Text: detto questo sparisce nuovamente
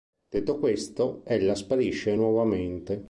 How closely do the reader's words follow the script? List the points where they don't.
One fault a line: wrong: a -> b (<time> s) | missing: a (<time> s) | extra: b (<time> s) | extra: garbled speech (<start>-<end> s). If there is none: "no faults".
extra: ella (1.2 s)